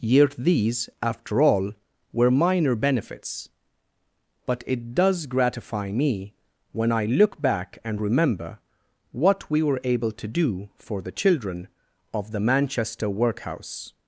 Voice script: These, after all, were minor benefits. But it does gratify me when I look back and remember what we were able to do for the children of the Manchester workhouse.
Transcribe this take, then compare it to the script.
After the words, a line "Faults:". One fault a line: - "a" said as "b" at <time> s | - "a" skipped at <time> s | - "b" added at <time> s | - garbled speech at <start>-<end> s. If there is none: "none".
yet These, after all, were minor benefits. But it does gratify me when I look back and remember what we were able to do for the children of the Manchester workhouse.
Faults:
- "yet" added at 0.0 s